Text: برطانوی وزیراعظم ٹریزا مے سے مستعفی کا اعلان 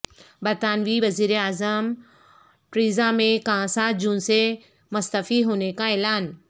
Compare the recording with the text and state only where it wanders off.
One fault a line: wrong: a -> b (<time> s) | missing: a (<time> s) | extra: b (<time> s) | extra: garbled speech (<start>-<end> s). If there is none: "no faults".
extra: کا سات جون (3.4 s)
extra: ہونے (5.4 s)